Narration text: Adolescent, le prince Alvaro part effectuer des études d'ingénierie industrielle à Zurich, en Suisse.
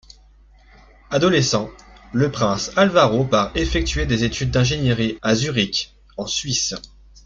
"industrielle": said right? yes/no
no